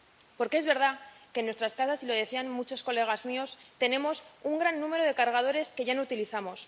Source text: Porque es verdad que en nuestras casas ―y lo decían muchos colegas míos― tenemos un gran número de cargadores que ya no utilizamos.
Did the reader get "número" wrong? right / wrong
right